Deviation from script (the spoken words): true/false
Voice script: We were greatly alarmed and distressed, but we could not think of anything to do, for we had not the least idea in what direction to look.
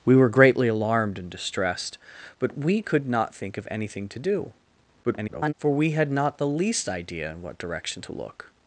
true